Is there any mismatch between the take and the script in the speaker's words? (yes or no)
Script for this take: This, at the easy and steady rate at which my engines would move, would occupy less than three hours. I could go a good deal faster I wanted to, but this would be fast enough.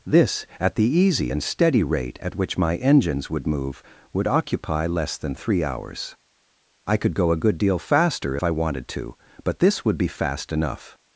no